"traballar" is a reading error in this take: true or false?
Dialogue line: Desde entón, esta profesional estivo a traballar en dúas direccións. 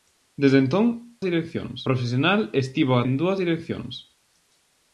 true